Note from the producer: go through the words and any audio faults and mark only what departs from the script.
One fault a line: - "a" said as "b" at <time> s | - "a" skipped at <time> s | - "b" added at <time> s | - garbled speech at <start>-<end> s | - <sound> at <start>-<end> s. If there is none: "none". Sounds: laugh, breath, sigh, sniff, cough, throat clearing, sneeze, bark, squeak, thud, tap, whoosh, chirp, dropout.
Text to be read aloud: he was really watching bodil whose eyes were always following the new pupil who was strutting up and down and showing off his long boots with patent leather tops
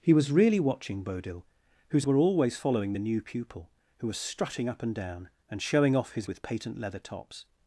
- "eyes" skipped at 2.1 s
- "long boots" skipped at 6.3 s